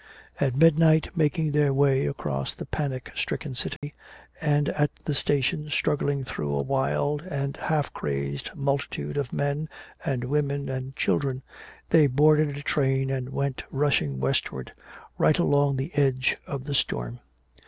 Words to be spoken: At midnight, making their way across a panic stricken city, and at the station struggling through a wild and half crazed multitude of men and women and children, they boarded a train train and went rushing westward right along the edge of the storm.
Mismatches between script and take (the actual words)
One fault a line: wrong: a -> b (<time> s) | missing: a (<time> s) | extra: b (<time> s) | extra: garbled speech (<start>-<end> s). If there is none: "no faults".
wrong: a -> the (2.5 s)
missing: train (13.1 s)